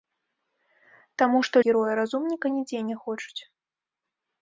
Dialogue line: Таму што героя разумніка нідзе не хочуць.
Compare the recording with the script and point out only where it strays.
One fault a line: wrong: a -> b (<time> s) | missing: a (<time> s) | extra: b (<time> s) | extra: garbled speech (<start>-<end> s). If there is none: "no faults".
no faults